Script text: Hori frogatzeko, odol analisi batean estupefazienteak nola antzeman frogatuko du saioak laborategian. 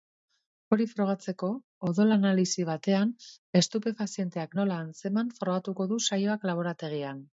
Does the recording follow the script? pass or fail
pass